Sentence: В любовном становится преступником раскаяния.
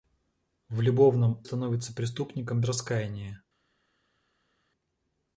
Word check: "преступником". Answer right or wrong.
right